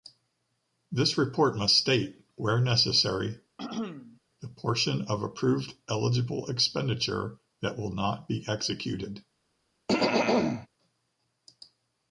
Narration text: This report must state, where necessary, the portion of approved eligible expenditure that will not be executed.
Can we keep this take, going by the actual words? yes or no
yes